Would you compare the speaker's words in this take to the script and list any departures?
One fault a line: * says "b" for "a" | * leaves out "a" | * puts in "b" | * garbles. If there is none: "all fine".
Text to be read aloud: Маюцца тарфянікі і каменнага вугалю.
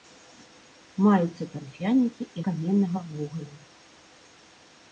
all fine